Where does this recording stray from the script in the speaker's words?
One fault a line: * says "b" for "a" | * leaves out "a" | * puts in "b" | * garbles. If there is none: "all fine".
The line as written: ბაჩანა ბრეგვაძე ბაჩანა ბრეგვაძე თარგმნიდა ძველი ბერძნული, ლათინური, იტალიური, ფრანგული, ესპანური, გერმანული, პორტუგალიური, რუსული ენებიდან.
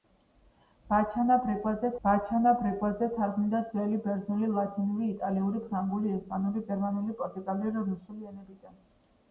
all fine